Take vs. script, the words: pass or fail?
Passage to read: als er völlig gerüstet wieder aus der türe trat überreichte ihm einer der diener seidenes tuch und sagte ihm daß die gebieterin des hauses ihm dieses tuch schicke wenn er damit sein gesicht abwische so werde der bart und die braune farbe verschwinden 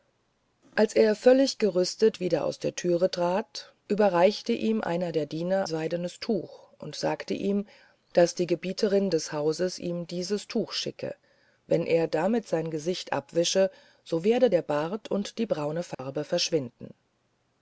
pass